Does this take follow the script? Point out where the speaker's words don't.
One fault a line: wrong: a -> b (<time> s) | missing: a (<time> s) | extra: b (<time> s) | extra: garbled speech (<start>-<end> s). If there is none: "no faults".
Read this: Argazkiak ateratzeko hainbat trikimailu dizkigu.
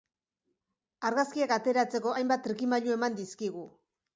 extra: eman (3.0 s)